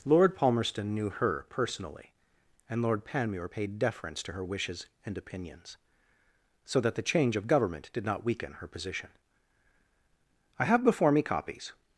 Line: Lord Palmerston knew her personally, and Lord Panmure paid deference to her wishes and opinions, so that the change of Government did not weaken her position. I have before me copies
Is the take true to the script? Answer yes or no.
yes